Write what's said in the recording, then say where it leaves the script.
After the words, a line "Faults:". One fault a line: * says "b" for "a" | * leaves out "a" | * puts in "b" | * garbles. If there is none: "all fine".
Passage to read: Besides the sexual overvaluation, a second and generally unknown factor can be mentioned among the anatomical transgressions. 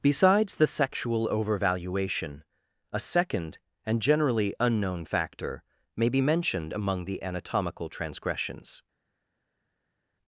Besides the sexual overvaluation, a second and generally unknown factor may be mentioned among the anatomical transgressions.
Faults:
* says "may" for "can"